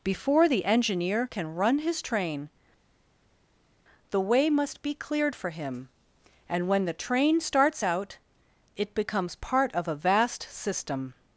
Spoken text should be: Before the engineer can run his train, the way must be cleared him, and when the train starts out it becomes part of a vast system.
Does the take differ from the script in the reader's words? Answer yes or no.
yes